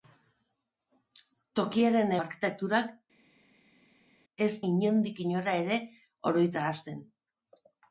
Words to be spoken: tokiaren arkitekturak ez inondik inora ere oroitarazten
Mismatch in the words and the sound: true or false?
false